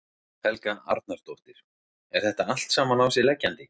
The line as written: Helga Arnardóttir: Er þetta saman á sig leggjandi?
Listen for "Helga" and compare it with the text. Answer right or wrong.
right